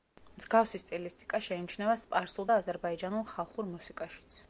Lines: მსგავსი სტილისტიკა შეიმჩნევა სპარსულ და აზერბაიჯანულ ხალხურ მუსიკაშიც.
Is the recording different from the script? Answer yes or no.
no